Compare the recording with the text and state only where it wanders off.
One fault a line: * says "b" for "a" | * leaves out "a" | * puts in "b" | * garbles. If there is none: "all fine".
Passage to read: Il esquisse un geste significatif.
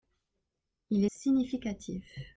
* leaves out "esquisse un geste"